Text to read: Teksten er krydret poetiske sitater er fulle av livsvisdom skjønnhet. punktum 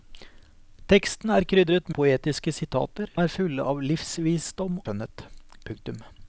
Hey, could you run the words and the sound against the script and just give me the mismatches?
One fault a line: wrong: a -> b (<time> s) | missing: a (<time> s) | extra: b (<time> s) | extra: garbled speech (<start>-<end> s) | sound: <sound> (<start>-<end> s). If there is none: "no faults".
no faults